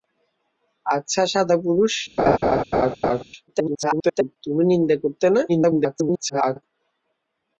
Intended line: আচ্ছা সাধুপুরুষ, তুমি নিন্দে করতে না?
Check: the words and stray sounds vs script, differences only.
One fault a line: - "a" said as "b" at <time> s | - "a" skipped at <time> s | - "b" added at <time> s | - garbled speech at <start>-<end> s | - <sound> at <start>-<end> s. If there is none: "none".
- laugh at 2.2-3.2 s
- garbled speech at 3.5-4.4 s
- garbled speech at 5.5-6.6 s